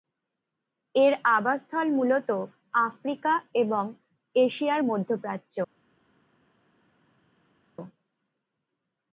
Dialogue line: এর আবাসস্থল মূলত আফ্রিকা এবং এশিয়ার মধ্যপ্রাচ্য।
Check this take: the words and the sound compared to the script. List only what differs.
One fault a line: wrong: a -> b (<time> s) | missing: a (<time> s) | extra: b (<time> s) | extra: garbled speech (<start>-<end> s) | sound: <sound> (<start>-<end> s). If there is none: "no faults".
no faults